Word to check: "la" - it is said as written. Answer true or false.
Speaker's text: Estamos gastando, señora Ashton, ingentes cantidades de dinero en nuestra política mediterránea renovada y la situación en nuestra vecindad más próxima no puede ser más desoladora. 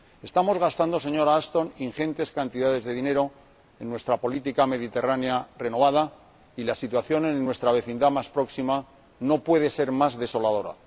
true